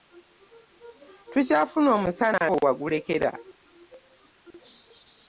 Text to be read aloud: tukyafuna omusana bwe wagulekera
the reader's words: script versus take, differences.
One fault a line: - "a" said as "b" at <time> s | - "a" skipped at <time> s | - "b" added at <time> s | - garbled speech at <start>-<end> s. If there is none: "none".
none